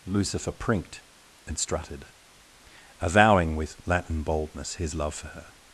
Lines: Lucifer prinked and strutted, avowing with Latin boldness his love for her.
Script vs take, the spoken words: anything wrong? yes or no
no